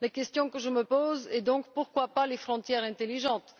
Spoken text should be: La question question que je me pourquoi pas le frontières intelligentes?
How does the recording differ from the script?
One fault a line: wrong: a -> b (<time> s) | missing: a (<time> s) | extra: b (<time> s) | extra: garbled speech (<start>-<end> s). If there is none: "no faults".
missing: question (0.5 s)
extra: pose est donc (0.8 s)
wrong: le -> les (2.2 s)